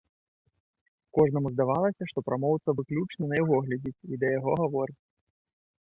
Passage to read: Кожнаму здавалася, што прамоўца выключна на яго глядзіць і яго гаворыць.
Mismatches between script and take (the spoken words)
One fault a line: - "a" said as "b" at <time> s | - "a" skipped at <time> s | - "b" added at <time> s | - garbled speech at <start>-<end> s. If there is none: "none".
- "да" added at 4.2 s